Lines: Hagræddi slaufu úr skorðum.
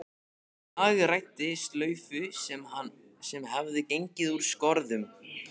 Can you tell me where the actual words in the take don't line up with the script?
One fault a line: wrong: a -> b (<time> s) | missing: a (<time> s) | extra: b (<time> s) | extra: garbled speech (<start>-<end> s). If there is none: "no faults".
extra: sem hafði gengið (3.3 s)